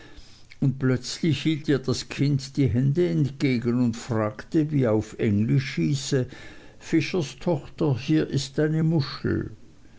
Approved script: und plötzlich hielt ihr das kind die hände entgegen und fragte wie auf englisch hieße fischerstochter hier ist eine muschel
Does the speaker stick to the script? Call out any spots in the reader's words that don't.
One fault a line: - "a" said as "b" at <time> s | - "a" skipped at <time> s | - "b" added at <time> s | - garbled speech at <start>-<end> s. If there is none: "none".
none